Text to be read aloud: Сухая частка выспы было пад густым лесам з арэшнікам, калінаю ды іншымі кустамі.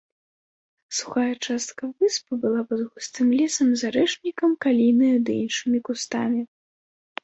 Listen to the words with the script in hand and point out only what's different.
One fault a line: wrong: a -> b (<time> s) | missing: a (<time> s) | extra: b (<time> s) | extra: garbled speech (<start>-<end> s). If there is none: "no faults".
wrong: было -> была (2.5 s)